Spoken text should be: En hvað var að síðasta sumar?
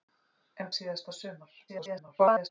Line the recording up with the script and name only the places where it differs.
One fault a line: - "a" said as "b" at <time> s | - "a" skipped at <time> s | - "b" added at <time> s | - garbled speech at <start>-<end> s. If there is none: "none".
- "hvað var að" skipped at 0.7 s
- garbled speech at 1.7-2.5 s